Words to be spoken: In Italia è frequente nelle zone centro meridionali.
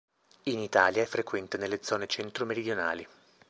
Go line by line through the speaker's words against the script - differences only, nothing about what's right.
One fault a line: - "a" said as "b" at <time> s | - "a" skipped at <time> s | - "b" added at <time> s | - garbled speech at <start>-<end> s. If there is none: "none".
none